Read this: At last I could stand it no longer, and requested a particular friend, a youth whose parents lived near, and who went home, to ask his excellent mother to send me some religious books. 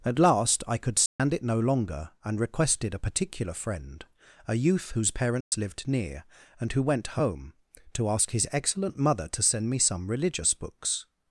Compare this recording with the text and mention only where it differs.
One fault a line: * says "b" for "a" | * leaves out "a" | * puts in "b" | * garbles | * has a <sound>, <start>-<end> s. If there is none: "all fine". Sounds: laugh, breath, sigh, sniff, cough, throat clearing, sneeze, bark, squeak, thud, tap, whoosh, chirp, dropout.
* has a dropout, 1.1-1.2 s
* has a dropout, 5.4-5.5 s